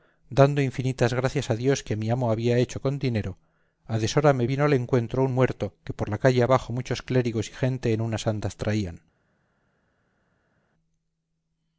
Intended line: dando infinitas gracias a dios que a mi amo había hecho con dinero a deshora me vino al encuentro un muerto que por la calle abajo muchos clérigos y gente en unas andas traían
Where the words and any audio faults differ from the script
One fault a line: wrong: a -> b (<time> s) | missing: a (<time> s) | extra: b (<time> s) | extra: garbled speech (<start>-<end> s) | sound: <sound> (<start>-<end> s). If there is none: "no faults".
no faults